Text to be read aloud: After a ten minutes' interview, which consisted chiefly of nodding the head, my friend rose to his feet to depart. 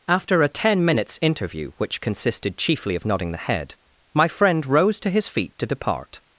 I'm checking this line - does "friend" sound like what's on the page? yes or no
yes